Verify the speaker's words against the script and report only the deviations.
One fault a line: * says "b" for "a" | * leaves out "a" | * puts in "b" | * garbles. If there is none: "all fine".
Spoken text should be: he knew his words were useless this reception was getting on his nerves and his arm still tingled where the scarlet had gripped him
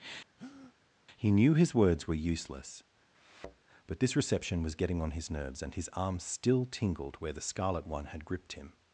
* puts in "but"
* puts in "one"